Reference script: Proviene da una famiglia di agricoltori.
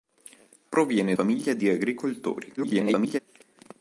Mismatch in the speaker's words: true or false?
true